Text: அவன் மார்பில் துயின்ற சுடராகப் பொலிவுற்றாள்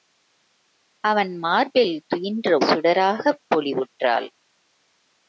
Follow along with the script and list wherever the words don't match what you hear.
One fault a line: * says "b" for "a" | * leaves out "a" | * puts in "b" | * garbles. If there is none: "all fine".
all fine